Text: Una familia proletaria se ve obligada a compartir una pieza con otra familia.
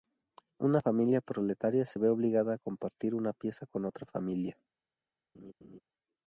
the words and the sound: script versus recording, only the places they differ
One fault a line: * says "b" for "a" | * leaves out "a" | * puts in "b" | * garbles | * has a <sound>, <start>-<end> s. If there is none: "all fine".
* has a laugh, 5.3-5.8 s